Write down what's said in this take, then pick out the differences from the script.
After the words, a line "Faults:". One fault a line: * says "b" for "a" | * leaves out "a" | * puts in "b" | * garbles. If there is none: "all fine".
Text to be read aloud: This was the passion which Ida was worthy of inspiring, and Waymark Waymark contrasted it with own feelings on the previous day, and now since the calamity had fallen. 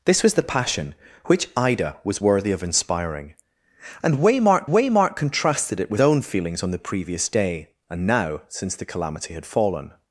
This was the passion which Ida was worthy of inspiring, and Waymark Waymark contrasted it with own feelings on the previous day, and now since the calamity had fallen.
Faults:
all fine